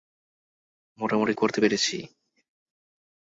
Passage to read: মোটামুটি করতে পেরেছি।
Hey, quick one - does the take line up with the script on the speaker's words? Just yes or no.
yes